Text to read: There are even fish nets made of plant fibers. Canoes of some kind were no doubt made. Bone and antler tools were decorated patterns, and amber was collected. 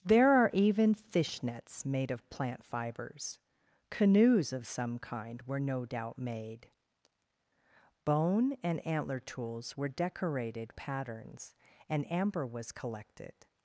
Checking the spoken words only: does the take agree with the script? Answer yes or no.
yes